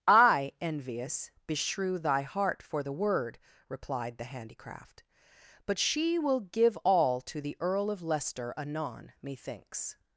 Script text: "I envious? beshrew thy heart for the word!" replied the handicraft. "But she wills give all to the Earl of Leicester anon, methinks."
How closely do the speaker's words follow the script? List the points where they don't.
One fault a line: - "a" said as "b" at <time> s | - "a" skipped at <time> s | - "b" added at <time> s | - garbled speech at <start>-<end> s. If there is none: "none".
- "wills" said as "will" at 6.2 s